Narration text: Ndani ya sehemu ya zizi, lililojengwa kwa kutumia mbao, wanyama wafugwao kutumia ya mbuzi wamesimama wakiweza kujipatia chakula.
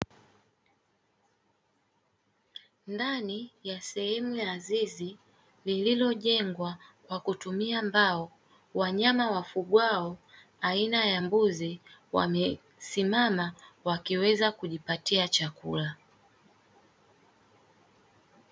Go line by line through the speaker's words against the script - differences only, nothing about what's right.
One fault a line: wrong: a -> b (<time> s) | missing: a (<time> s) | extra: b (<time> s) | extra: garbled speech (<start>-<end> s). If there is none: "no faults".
wrong: kutumia -> aina (10.6 s)